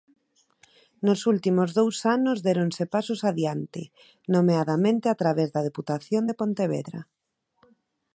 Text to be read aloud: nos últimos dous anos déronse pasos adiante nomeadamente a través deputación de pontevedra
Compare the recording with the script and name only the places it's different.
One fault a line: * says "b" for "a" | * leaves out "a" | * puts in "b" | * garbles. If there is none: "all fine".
* puts in "da"